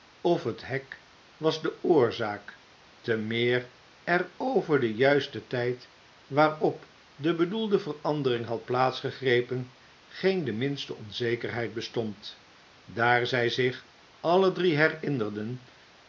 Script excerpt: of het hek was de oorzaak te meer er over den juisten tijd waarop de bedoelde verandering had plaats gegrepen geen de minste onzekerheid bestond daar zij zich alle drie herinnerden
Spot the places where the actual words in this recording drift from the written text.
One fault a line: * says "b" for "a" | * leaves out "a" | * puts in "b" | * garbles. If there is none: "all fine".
all fine